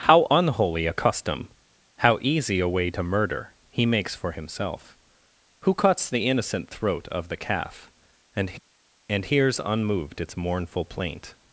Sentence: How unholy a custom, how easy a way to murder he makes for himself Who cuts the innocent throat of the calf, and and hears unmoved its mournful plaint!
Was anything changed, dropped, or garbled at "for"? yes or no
no